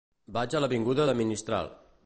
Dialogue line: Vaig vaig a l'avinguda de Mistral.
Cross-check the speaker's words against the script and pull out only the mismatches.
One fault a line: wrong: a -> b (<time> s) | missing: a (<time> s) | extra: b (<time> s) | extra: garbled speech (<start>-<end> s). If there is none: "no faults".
missing: vaig (0.6 s)